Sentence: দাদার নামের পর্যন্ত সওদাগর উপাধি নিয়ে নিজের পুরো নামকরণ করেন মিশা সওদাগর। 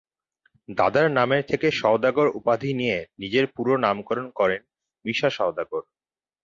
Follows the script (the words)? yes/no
no